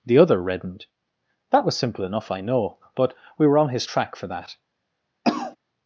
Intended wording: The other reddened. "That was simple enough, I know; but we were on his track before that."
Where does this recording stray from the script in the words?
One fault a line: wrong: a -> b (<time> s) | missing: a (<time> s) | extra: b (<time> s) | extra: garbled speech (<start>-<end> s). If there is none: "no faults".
wrong: before -> for (4.2 s)